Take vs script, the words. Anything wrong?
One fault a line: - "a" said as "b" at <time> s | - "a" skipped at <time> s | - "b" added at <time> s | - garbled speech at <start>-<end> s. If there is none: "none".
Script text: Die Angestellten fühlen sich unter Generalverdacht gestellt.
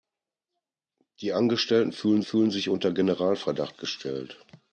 - "fühlen" added at 2.2 s